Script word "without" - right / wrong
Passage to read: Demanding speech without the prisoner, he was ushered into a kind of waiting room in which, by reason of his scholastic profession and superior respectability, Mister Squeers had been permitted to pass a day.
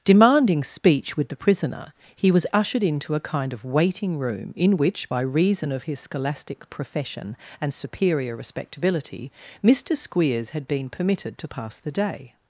wrong